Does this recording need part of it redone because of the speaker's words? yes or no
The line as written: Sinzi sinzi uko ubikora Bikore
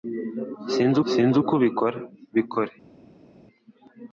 no